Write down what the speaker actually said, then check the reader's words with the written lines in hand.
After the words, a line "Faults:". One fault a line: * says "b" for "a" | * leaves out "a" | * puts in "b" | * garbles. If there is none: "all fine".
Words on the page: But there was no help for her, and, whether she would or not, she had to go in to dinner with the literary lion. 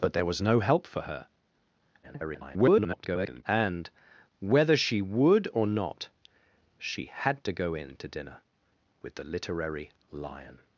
But there was no help for her, [garbled] and, whether she would or not, she had to go in to dinner with the literary lion.
Faults:
* garbles